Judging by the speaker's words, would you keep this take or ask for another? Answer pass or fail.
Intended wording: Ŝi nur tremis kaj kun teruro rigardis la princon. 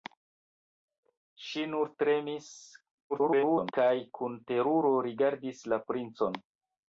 fail